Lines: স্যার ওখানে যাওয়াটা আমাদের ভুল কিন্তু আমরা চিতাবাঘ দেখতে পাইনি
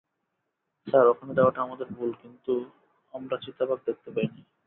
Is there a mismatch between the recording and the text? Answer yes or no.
no